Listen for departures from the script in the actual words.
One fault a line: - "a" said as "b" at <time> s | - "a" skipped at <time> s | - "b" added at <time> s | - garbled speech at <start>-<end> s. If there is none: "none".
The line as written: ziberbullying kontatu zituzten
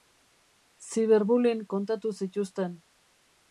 none